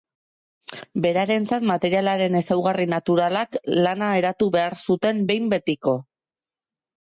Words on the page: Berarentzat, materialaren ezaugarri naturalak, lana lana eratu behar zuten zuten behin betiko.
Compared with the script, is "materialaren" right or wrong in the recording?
right